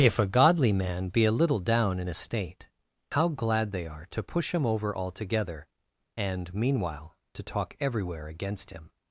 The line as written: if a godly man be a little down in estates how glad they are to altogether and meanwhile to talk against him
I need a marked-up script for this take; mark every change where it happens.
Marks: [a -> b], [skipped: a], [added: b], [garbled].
if a godly man be a little down in [estates -> estate] how glad they are to [added: push him over] altogether and meanwhile to talk [added: everywhere] against him